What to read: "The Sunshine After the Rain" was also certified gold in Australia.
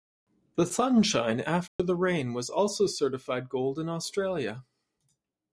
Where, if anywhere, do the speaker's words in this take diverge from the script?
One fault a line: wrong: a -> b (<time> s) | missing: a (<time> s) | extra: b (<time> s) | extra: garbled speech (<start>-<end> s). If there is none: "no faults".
no faults